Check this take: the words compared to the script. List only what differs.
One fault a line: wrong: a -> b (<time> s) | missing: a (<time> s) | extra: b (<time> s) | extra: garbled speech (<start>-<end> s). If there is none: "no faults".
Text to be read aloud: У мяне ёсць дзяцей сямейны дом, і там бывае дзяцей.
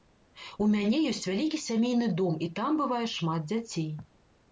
wrong: дзяцей -> вялікі (1.3 s)
extra: шмат (3.2 s)